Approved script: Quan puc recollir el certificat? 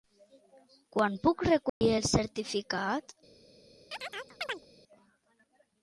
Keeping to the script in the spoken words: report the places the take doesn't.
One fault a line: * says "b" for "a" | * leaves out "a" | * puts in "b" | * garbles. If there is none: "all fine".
all fine